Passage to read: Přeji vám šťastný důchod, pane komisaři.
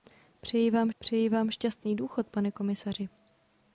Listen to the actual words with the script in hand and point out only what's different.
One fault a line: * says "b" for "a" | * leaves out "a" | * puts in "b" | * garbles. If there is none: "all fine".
* puts in "přeji vám"